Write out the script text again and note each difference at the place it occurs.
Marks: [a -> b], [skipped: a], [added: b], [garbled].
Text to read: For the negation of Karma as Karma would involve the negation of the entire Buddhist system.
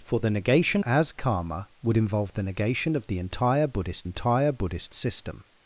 For the negation [skipped: of Karma] as Karma would involve the negation of the entire Buddhist [added: entire Buddhist] system.